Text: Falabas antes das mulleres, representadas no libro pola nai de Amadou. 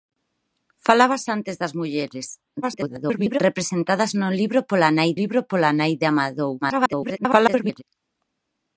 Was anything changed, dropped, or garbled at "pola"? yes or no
no